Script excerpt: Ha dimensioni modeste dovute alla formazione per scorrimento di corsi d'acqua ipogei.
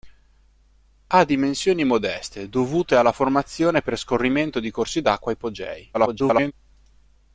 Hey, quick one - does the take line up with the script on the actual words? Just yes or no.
no